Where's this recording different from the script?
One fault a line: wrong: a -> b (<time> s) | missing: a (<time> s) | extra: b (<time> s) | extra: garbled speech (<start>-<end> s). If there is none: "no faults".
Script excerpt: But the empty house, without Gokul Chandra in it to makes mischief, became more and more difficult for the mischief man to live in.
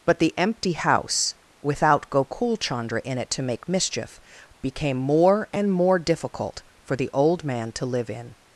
wrong: makes -> make (3.4 s)
wrong: mischief -> old (7.1 s)